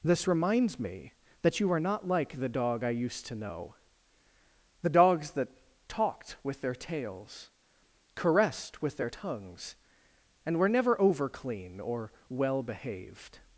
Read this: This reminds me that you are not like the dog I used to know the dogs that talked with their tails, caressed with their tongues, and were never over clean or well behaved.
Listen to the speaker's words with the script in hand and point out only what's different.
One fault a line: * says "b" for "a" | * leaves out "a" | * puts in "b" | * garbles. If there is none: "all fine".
all fine